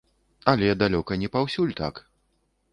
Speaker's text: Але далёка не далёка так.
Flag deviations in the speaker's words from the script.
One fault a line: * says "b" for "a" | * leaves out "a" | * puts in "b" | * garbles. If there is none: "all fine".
* says "паўсюль" for "далёка"